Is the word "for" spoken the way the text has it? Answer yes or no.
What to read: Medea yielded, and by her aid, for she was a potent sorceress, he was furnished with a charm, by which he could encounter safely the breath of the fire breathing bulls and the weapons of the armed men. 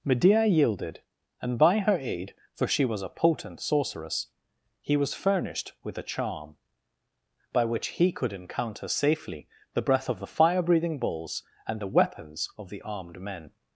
yes